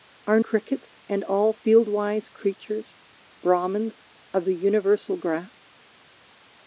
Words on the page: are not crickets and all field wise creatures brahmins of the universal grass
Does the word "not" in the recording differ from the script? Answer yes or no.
yes